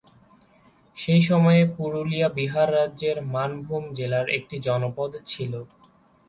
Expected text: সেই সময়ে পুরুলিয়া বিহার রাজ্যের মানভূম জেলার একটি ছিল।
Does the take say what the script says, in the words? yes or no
no